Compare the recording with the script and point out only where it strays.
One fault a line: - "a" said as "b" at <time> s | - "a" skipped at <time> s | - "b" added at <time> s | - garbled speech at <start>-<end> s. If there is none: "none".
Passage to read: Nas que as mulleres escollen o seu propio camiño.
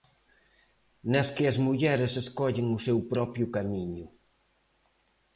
none